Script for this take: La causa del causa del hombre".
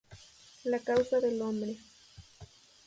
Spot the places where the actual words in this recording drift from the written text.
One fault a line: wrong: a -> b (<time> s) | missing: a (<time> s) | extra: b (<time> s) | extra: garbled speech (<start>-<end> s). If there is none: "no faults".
missing: causa del (1.4 s)